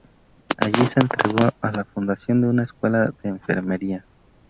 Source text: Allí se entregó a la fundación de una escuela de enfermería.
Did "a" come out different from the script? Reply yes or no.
no